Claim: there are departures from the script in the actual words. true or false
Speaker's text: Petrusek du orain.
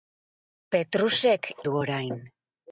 false